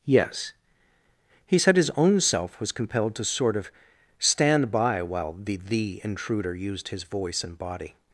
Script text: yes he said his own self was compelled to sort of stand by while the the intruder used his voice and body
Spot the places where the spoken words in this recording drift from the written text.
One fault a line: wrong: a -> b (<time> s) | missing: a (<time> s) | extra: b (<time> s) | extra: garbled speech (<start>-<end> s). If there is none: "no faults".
no faults